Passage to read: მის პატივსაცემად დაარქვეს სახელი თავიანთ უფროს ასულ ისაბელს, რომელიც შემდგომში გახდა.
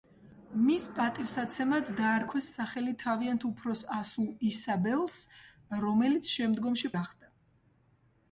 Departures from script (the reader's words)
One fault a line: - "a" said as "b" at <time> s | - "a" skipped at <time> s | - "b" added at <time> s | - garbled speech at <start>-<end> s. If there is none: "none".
none